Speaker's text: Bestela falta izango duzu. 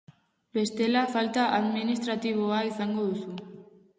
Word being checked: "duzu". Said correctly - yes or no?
yes